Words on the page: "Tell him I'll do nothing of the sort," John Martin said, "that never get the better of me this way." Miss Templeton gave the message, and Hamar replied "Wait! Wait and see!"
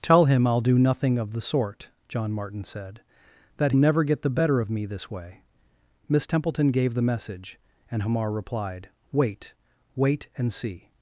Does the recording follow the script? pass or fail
pass